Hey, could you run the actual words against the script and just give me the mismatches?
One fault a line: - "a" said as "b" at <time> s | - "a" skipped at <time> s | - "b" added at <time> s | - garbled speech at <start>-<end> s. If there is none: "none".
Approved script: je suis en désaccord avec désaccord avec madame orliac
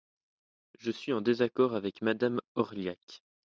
- "désaccord avec" skipped at 2.0 s